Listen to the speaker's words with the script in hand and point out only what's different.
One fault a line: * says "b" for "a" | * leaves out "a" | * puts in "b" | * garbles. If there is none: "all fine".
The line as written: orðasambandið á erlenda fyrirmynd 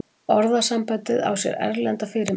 * puts in "sér"